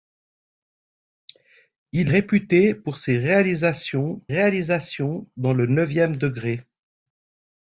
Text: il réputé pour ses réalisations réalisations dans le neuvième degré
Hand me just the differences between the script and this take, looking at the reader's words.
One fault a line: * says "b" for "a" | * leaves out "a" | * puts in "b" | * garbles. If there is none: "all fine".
all fine